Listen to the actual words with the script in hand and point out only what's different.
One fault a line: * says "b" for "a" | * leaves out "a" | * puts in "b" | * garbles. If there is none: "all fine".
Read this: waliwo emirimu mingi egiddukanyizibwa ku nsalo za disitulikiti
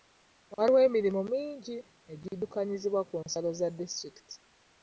all fine